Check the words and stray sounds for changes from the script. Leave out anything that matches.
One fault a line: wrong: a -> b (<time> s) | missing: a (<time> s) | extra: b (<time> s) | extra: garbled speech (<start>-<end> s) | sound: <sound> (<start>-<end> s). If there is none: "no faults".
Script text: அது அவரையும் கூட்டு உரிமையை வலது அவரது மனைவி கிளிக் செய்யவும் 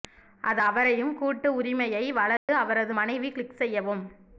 sound: dropout (2.4-2.5 s)